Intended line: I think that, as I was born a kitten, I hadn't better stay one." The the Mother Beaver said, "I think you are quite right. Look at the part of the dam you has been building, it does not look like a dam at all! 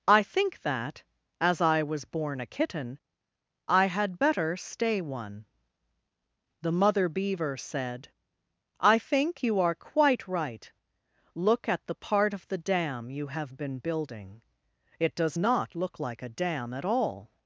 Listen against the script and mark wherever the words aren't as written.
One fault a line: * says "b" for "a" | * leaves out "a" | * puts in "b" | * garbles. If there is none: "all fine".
* says "had" for "hadn't"
* leaves out "the"
* says "have" for "has"